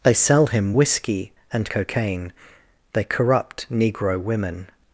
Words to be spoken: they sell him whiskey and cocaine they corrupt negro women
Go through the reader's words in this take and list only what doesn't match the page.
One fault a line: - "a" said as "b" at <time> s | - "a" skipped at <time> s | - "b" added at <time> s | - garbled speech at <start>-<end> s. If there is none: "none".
none